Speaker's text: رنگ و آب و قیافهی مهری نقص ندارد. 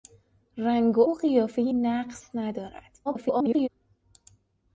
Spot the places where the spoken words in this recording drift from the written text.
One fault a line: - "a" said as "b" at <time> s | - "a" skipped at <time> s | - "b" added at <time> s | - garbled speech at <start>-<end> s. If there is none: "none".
- "آب" skipped at 1.0 s
- "مهری" skipped at 1.7 s
- garbled speech at 3.1-3.7 s